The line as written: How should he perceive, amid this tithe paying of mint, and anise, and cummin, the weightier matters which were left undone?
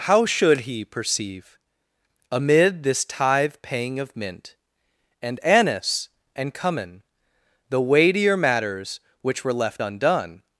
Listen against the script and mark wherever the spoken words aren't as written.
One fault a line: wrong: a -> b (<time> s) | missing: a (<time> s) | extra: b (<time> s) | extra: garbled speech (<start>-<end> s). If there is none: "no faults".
no faults